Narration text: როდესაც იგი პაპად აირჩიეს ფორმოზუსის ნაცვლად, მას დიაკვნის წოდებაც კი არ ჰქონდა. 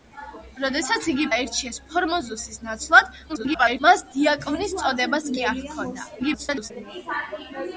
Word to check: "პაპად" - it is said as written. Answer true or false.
false